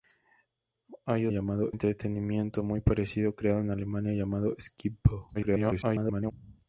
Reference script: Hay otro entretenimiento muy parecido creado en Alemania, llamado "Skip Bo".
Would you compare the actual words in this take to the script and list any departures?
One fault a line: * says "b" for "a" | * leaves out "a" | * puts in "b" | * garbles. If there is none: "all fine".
* says "llamado" for "otro"
* garbles